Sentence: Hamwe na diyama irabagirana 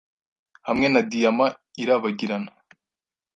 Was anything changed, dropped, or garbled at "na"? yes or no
no